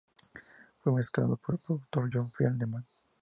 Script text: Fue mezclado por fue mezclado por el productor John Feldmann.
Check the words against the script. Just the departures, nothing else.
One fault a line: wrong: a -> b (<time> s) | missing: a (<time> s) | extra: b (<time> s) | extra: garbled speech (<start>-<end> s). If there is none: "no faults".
missing: fue mezclado por (1.5 s)